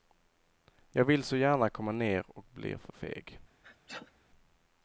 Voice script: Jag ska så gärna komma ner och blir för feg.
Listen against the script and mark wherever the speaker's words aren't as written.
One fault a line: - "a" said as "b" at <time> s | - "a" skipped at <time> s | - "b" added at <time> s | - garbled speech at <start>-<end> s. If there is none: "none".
- "ska" said as "vill" at 1.1 s